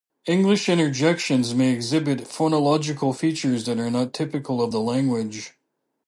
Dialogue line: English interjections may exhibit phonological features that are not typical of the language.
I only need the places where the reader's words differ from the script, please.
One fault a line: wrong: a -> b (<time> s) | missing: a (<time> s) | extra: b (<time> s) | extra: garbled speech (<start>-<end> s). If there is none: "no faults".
no faults